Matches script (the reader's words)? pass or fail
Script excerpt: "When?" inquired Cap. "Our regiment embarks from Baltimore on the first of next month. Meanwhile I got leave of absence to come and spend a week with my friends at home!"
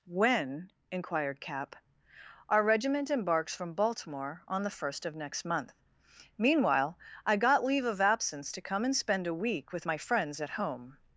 pass